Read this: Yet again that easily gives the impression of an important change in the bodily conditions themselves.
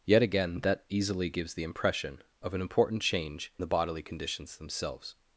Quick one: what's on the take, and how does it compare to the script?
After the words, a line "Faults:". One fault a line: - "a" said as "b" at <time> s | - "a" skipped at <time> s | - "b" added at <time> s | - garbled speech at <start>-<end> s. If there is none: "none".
Yet again that easily gives the impression of an important change the bodily conditions themselves.
Faults:
- "in" skipped at 3.5 s